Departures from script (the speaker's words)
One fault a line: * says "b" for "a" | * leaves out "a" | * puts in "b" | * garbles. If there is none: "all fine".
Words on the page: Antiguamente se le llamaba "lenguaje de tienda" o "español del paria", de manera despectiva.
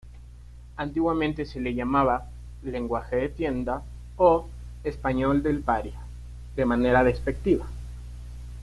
all fine